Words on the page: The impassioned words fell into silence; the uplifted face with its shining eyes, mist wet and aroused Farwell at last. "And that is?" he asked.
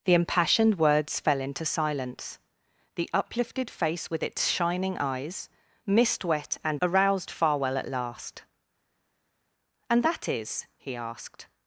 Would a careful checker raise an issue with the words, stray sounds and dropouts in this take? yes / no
no